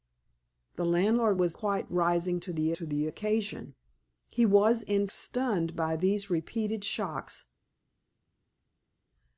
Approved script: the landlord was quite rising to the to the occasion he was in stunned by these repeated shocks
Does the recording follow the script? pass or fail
pass